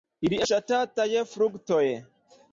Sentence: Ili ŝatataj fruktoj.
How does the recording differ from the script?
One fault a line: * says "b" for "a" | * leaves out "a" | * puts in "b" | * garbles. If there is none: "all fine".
all fine